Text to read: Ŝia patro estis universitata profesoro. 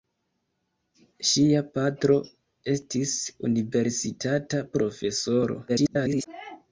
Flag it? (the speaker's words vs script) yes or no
yes